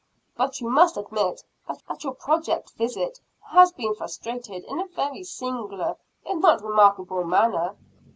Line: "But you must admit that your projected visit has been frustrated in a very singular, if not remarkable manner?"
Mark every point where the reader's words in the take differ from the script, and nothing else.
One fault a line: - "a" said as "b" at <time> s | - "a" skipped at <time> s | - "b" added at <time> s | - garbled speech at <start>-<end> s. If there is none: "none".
- "that" added at 1.9 s